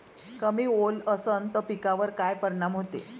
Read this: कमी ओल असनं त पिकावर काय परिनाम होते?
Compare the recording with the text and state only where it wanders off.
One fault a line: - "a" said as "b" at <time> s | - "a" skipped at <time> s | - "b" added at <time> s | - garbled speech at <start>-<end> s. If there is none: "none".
none